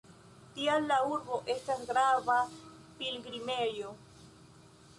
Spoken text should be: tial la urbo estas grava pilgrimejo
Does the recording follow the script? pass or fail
pass